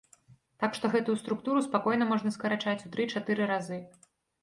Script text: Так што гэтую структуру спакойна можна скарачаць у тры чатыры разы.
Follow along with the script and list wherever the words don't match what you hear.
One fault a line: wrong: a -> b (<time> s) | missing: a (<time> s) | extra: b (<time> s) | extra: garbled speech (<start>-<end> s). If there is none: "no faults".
no faults